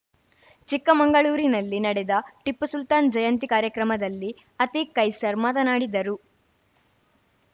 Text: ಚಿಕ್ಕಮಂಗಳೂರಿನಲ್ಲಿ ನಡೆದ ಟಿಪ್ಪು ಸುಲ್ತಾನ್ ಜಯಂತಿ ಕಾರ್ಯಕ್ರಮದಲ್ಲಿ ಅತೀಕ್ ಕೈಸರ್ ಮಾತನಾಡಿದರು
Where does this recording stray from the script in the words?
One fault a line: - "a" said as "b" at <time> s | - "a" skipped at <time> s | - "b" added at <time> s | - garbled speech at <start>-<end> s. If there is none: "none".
none